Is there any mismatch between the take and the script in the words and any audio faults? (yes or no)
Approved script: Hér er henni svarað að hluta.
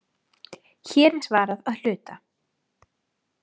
yes